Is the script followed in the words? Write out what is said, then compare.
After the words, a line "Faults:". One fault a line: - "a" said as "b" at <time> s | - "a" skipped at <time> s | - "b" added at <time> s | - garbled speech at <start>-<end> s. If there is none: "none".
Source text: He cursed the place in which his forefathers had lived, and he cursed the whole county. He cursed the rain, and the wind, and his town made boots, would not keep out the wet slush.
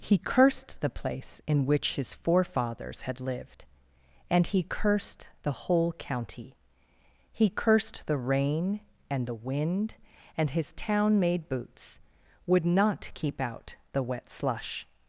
He cursed the place in which his forefathers had lived, and he cursed the whole county. He cursed the rain, and the wind, and his town made boots, would not keep out the wet slush.
Faults:
none